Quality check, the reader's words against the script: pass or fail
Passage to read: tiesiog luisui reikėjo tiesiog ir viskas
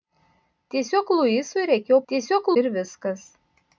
pass